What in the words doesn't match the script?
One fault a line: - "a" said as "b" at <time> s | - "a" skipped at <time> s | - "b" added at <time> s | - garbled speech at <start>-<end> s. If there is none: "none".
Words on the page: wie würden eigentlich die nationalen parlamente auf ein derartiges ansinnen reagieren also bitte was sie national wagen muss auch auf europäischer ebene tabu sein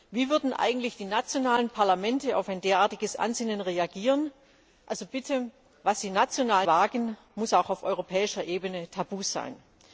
none